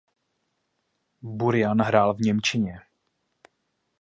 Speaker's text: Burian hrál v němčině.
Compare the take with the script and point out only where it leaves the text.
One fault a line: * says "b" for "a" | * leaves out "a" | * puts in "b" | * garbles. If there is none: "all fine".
all fine